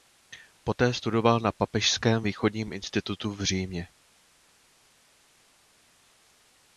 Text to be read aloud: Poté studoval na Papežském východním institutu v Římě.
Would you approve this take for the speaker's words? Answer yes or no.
yes